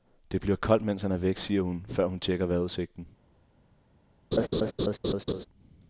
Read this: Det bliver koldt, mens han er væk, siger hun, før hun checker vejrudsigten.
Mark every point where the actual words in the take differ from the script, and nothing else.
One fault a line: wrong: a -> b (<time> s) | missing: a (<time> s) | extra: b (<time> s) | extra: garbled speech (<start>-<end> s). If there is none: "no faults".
no faults